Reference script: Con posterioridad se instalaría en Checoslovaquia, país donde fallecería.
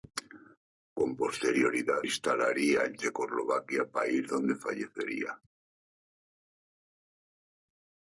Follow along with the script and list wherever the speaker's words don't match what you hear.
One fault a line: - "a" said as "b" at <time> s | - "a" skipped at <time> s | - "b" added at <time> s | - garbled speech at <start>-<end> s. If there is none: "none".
- "se" skipped at 2.0 s